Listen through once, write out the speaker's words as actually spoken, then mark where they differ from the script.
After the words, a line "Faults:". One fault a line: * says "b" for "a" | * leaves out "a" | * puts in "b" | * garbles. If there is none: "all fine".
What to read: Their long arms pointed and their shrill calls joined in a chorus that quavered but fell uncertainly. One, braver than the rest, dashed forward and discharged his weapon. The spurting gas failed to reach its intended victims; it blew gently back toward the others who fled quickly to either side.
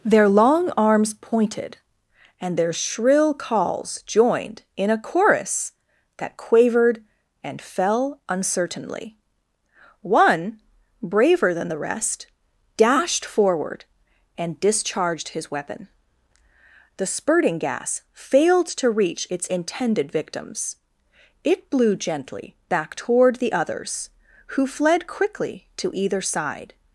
Their long arms pointed and their shrill calls joined in a chorus that quavered and fell uncertainly. One, braver than the rest, dashed forward and discharged his weapon. The spurting gas failed to reach its intended victims; it blew gently back toward the others who fled quickly to either side.
Faults:
* says "and" for "but"